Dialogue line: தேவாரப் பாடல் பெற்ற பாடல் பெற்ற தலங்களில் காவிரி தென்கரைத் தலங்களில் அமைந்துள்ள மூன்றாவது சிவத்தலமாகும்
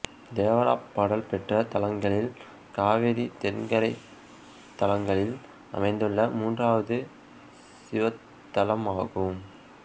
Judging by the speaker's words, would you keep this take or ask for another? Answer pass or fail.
fail